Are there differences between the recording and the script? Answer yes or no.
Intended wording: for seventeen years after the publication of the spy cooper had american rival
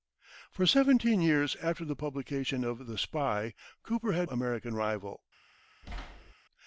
no